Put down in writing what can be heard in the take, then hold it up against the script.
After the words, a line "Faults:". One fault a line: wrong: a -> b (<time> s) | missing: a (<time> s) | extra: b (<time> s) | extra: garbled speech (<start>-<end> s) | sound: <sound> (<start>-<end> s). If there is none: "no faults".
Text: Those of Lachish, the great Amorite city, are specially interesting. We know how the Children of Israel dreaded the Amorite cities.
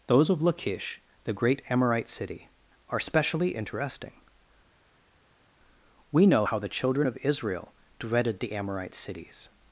Those of Lachish, the great Amorite city, are specially interesting. We know how the Children of Israel dreaded the Amorite cities.
Faults:
no faults